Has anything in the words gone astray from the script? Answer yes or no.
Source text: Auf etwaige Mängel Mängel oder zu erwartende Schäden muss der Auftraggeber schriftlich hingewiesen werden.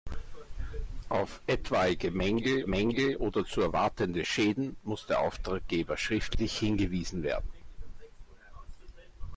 no